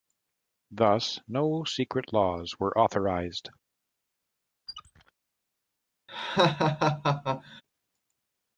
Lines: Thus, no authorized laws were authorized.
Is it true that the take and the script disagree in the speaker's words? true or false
true